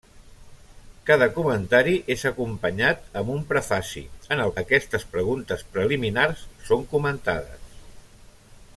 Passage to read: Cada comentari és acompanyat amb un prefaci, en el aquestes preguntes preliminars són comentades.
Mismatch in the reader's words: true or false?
false